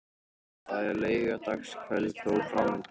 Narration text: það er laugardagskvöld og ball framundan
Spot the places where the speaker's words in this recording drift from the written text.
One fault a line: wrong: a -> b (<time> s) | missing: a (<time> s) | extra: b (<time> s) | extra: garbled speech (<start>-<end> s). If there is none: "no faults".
missing: ball (2.4 s)